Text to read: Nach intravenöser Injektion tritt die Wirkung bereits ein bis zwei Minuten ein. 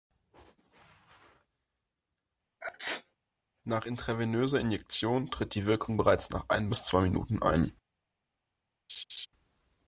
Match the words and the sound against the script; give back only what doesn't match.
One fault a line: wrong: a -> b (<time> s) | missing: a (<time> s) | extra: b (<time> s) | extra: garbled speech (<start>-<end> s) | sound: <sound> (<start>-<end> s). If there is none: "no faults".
sound: sneeze (2.6-3.2 s)
extra: nach (6.3 s)
sound: laugh (8.9-9.3 s)